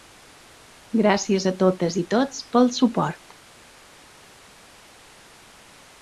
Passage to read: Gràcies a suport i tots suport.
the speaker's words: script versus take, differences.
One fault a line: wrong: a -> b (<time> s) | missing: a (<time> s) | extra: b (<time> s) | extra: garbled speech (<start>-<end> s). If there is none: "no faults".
wrong: suport -> totes (1.6 s)
extra: pel (2.5 s)